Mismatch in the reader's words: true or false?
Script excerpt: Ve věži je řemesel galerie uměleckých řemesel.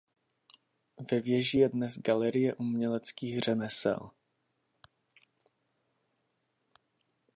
true